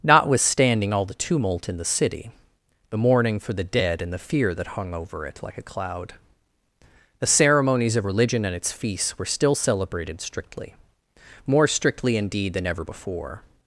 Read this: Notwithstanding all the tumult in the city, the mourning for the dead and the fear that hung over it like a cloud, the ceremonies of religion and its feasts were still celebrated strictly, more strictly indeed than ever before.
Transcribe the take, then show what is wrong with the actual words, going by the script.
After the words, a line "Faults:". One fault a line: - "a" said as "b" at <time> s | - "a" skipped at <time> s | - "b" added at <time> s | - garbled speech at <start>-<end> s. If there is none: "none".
Notwithstanding all the tumult in the city, the mourning for the dead and the fear that hung over it like a cloud, the ceremonies of religion and its feasts were still celebrated strictly, more strictly indeed than ever before.
Faults:
none